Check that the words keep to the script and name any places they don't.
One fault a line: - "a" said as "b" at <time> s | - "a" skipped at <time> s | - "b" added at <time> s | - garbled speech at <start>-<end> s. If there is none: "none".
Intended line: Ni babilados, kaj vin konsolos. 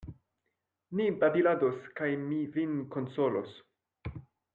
- "mi" added at 2.2 s